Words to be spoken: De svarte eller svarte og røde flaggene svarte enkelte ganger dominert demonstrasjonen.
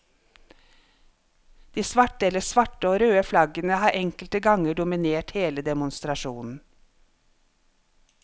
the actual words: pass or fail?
fail